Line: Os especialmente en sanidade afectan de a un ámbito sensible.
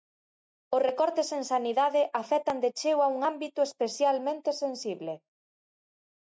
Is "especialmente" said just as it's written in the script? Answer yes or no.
no